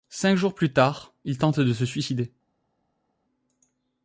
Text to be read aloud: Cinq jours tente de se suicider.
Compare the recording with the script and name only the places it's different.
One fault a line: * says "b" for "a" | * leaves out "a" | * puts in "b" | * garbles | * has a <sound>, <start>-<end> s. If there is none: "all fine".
* puts in "plus tard il"